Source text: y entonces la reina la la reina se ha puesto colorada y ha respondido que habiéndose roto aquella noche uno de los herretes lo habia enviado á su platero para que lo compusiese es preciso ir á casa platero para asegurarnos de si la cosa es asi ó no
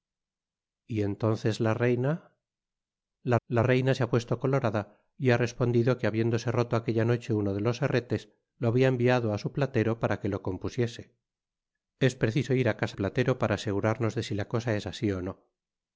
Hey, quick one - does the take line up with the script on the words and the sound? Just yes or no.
yes